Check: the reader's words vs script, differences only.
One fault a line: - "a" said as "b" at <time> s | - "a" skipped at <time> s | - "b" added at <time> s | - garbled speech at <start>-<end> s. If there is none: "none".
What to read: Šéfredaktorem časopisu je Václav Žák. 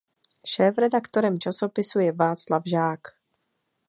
none